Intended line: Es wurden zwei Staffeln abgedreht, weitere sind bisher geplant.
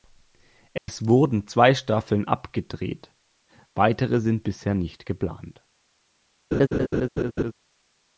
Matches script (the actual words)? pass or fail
fail